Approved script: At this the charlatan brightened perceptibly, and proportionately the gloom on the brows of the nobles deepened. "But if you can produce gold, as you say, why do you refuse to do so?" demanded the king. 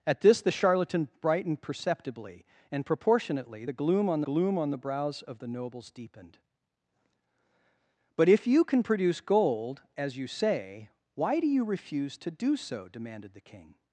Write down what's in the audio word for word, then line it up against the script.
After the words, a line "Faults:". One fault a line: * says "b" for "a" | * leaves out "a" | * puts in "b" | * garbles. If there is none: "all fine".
At this the charlatan brightened perceptibly, and proportionately the gloom on gloom on the brows of the nobles deepened. "But if you can produce gold, as you say, why do you refuse to do so?" demanded the king.
Faults:
* puts in "gloom on"